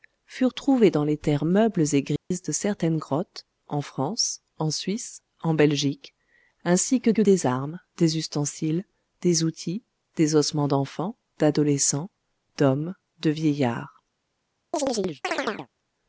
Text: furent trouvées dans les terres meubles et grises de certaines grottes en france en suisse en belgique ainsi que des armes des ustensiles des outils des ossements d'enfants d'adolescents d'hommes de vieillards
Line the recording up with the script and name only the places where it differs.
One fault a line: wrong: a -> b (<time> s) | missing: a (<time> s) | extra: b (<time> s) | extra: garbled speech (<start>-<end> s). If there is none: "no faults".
extra: que (7.1 s)